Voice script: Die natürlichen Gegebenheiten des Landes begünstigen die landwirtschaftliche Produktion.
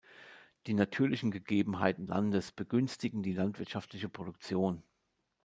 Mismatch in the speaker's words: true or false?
true